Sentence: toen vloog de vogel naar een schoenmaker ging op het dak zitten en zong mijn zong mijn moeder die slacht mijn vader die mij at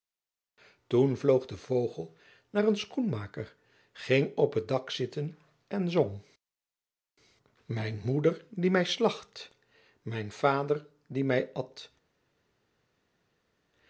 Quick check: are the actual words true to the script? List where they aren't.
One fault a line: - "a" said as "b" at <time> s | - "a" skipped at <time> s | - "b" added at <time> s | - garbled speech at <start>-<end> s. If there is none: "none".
- "zong mijn" skipped at 8.0 s
- "mij" added at 8.7 s